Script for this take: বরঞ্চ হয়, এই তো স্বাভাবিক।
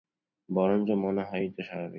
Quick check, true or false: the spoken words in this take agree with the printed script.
false